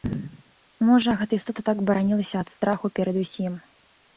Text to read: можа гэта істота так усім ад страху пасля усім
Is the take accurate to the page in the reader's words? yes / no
no